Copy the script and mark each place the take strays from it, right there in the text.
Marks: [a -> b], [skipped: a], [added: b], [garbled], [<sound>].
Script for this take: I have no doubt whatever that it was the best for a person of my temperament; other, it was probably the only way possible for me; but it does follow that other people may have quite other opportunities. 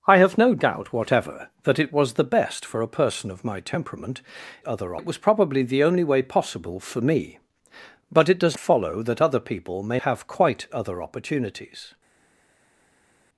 I have no doubt whatever that it was the best for a person of my temperament; other, it was probably the only way possible for me; but it does follow that other people may have quite other opportunities.